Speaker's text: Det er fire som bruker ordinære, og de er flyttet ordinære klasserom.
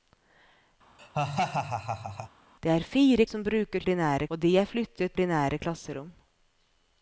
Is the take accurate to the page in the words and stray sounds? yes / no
no